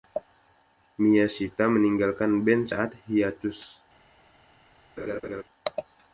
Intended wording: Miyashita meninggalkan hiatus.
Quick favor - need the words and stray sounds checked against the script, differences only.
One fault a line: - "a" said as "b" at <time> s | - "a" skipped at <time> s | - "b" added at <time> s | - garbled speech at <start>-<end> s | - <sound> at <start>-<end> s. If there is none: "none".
- "band saat" added at 2.4 s
- laugh at 5.0-5.4 s